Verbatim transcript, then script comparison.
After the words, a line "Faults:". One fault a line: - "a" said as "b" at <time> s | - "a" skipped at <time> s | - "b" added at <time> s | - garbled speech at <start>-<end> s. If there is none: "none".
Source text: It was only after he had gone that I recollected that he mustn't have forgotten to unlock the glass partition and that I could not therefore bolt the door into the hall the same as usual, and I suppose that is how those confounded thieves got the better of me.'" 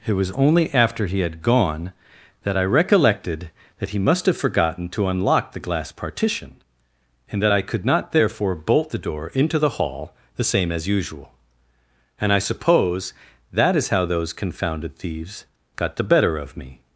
It was only after he had gone that I recollected that he must have forgotten to unlock the glass partition and that I could not therefore bolt the door into the hall the same as usual, and I suppose that is how those confounded thieves got the better of me.'"
Faults:
- "mustn't" said as "must" at 4.0 s